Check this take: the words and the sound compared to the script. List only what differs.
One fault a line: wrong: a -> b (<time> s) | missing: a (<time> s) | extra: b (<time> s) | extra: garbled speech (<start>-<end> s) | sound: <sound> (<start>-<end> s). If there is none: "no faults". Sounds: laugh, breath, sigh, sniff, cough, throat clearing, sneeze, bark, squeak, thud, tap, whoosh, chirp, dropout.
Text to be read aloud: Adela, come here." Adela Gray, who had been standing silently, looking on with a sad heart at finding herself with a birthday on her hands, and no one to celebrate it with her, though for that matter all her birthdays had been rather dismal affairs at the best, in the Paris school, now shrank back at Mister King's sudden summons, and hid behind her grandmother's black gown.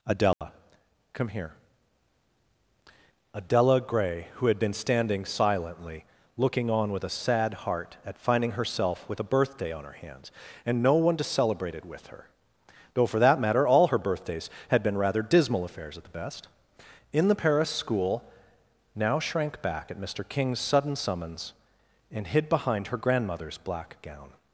sound: dropout (0.3-0.4 s)